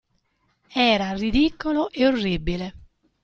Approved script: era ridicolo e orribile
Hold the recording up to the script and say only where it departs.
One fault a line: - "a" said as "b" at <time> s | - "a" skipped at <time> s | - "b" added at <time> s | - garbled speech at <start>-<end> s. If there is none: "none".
none